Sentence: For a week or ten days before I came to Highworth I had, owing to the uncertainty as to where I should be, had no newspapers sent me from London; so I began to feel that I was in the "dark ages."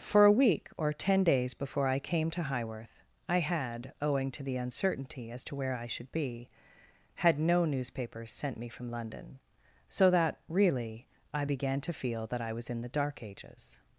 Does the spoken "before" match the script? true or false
true